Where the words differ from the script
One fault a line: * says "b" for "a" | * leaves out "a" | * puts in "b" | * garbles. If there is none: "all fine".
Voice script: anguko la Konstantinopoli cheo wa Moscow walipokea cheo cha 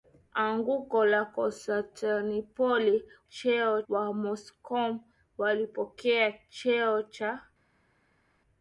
all fine